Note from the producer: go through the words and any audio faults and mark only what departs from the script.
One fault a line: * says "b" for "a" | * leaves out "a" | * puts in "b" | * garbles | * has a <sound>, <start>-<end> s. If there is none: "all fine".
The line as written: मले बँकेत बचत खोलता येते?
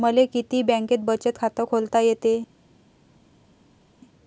* puts in "किती"
* puts in "खात"